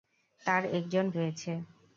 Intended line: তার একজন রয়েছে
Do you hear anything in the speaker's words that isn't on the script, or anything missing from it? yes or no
no